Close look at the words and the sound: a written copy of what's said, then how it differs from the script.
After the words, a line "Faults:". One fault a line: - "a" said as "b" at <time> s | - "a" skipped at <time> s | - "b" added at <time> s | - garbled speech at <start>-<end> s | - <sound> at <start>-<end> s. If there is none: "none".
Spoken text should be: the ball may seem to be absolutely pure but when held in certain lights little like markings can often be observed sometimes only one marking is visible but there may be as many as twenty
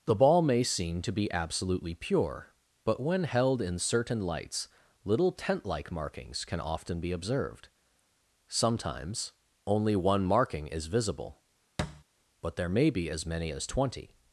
the ball may seem to be absolutely pure but when held in certain lights little tent like markings can often be observed sometimes only one marking is visible but there may be as many as twenty
Faults:
- "tent" added at 5.3 s
- thud at 11.8-12.0 s